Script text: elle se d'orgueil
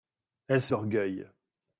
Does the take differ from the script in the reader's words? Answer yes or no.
no